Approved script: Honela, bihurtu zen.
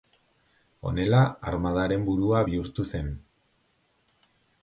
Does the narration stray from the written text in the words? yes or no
yes